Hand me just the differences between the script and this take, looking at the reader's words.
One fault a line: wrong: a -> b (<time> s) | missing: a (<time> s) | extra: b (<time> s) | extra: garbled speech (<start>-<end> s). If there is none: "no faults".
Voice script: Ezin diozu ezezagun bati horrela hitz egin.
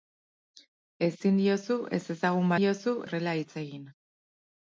wrong: bati -> diozu (2.6 s)